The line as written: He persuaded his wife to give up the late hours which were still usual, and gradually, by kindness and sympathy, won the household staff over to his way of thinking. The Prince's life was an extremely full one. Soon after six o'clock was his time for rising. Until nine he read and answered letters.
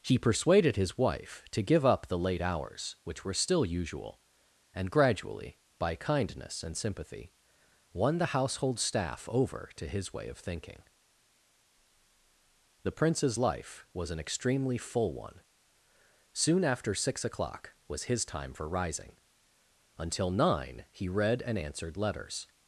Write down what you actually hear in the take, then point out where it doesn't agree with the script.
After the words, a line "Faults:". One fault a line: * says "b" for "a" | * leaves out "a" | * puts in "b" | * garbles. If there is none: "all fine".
He persuaded his wife to give up the late hours which were still usual, and gradually, by kindness and sympathy, won the household staff over to his way of thinking. The Prince's life was an extremely full one. Soon after six o'clock was his time for rising. Until nine he read and answered letters.
Faults:
all fine